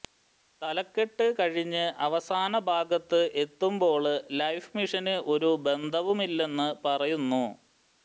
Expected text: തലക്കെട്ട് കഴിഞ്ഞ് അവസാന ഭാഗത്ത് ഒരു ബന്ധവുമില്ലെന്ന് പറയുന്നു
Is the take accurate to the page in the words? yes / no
no